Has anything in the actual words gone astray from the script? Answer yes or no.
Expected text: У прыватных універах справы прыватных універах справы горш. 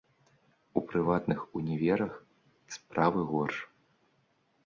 yes